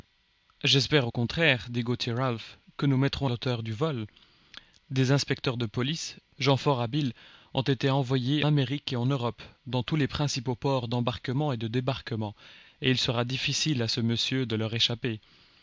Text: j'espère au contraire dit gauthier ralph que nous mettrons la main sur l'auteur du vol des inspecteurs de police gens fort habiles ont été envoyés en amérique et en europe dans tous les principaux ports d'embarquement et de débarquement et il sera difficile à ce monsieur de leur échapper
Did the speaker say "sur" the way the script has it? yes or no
no